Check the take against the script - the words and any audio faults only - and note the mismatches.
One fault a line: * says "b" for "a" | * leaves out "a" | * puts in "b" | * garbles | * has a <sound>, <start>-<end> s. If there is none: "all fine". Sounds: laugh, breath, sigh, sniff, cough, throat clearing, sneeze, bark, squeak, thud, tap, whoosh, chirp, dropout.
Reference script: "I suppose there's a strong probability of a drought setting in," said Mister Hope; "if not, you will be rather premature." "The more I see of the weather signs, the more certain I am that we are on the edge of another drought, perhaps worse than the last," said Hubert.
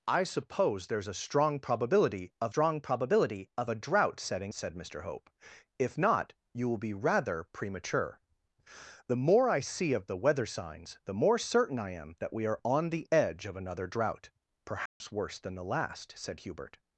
* puts in "strong probability of"
* leaves out "in"
* has a dropout, 14.9-15.0 s